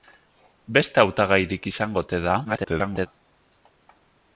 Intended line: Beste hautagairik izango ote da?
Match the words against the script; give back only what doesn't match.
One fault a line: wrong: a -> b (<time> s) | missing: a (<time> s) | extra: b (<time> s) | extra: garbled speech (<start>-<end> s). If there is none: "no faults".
extra: garbled speech (2.4-3.1 s)